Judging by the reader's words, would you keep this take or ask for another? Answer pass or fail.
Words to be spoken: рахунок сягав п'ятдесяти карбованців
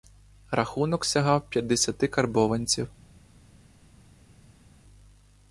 pass